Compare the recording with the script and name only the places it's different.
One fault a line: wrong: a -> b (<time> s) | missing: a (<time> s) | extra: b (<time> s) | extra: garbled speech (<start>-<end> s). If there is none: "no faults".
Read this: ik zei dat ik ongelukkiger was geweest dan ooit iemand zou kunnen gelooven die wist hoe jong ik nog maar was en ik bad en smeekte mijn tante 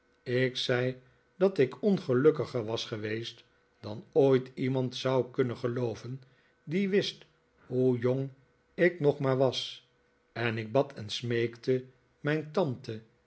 no faults